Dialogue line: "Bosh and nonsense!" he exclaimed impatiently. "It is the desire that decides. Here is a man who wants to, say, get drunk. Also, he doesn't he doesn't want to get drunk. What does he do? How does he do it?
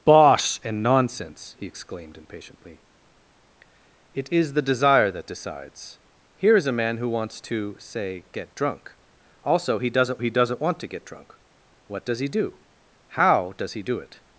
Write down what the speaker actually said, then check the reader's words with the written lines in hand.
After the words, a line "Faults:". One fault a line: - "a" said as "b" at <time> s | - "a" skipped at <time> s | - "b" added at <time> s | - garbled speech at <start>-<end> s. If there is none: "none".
"Bosh and nonsense!" he exclaimed impatiently. "It is the desire that decides. Here is a man who wants to, say, get drunk. Also, he doesn't he doesn't want to get drunk. What does he do? How does he do it?
Faults:
none